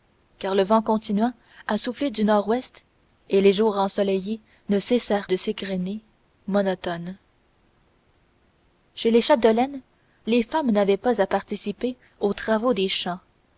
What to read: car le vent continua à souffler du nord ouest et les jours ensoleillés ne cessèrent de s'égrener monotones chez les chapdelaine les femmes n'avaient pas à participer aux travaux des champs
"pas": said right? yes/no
yes